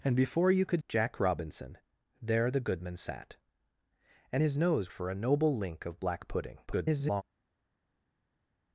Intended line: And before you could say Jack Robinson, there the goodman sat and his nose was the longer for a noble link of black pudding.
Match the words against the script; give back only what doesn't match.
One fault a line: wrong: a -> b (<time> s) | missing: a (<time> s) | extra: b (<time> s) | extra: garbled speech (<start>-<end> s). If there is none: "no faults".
missing: say (0.8 s)
missing: was the longer (4.9 s)
extra: garbled speech (6.7-7.2 s)